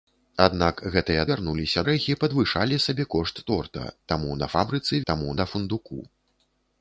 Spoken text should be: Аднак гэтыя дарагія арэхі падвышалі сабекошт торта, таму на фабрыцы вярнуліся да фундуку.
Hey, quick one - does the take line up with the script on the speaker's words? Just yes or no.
no